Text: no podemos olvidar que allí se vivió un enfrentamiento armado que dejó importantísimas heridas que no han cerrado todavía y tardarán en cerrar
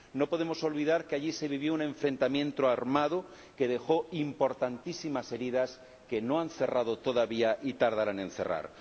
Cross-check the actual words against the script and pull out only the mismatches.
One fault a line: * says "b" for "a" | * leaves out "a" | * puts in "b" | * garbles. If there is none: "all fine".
all fine